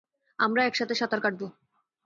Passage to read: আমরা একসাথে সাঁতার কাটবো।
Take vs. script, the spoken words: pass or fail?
pass